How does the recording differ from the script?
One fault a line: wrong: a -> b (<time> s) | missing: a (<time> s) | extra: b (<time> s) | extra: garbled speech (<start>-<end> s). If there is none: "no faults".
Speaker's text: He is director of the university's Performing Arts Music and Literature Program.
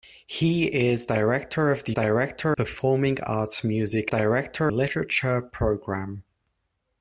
wrong: university's -> director (1.9 s)
wrong: and -> director (4.1 s)